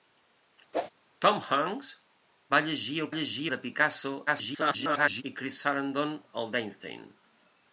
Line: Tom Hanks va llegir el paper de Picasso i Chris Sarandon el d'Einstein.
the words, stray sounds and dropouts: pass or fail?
fail